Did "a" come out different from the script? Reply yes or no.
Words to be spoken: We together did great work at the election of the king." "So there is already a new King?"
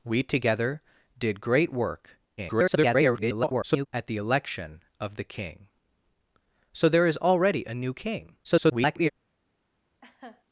no